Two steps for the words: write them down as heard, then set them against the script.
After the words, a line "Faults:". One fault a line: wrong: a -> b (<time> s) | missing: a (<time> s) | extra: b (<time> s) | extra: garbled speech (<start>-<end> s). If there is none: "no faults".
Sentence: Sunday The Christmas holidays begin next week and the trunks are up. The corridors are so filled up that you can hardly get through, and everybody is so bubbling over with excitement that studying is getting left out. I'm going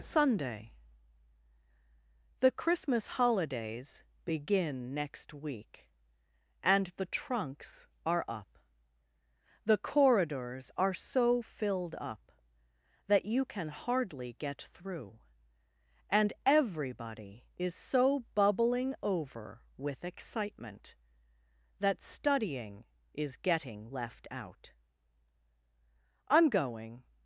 Sunday The Christmas holidays begin next week and the trunks are up. The corridors are so filled up that you can hardly get through, and everybody is so bubbling over with excitement that studying is getting left out. I'm going
Faults:
no faults